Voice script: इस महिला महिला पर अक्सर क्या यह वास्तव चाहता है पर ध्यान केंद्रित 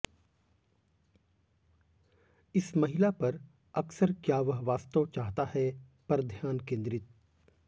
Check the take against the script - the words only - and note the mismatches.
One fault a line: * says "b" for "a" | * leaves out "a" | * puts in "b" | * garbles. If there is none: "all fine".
* leaves out "महिला"
* says "वह" for "यह"